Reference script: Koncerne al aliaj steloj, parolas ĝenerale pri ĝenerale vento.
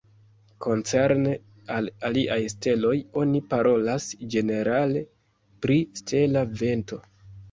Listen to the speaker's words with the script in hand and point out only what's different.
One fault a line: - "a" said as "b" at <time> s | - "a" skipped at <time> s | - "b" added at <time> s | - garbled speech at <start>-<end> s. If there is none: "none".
- "oni" added at 3.2 s
- "ĝenerale" said as "stela" at 6.0 s